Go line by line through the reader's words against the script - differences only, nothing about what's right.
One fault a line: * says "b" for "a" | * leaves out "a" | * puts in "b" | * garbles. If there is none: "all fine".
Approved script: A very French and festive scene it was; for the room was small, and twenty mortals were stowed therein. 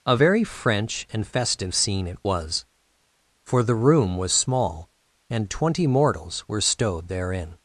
all fine